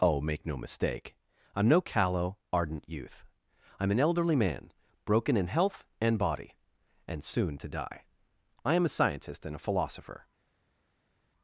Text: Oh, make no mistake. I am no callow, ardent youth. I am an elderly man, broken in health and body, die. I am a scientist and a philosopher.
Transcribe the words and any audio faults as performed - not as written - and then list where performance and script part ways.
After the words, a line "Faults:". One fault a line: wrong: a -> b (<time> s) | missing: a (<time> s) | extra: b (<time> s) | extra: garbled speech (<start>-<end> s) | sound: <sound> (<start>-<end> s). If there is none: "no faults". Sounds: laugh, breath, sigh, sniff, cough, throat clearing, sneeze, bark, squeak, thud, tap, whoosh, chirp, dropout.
Oh, make no mistake. I am no callow, ardent youth. I am an elderly man, broken in health and body, and soon to die. I am a scientist and a philosopher.
Faults:
extra: and soon to (7.1 s)